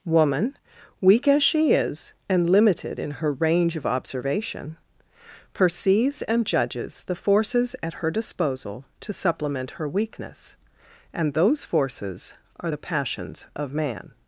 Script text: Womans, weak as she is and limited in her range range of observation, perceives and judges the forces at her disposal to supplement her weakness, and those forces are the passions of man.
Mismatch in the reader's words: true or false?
true